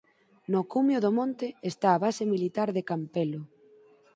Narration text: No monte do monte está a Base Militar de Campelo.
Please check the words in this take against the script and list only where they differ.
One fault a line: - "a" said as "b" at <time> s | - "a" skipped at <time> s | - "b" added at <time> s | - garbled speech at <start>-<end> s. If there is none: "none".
- "monte" said as "cumio" at 0.7 s